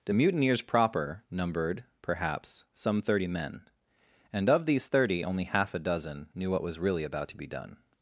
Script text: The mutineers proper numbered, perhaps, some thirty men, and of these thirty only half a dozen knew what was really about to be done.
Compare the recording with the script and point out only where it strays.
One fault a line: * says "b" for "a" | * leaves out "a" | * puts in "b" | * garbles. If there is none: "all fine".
all fine